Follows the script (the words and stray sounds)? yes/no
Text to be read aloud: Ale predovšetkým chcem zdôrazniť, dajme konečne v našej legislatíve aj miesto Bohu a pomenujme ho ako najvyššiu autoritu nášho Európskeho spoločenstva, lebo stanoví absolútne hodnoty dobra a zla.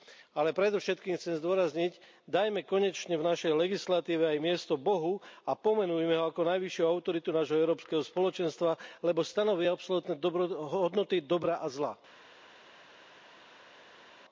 yes